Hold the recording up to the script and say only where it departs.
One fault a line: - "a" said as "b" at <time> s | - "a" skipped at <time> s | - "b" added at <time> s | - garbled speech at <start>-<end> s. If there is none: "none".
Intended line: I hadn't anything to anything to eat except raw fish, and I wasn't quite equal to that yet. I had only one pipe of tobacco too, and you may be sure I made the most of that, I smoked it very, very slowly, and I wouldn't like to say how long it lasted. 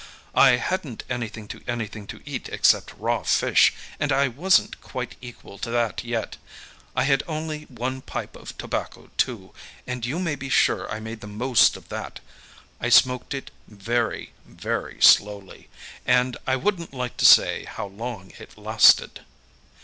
none